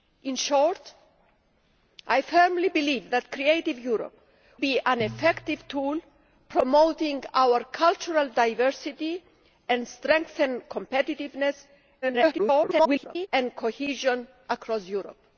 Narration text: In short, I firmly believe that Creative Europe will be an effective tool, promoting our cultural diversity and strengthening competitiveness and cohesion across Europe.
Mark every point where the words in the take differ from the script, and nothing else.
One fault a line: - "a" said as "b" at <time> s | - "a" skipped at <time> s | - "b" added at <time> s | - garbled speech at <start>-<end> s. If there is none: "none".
- "will" skipped at 4.2 s
- garbled speech at 12.0-13.3 s